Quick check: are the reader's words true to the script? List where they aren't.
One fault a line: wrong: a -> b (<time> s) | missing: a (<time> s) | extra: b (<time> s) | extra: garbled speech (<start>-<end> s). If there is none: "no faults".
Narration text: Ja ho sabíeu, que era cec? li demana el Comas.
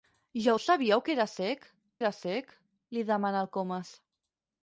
extra: era cec (2.0 s)